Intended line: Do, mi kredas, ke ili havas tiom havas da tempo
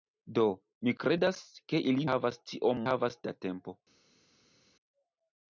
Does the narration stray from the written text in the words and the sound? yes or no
no